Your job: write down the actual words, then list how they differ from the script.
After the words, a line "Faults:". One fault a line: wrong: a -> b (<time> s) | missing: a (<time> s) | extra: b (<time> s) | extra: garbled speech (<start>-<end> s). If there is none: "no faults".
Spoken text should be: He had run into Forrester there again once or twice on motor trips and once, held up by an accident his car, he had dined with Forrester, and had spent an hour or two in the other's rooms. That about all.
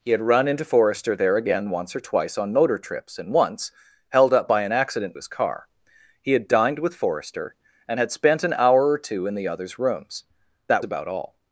He had run into Forrester there again once or twice on motor trips and once, held up by an accident his car, he had dined with Forrester, and had spent an hour or two in the other's rooms. That about all.
Faults:
no faults